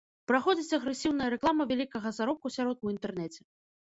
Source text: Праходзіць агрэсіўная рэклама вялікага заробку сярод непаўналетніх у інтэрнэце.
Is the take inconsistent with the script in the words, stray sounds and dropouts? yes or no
yes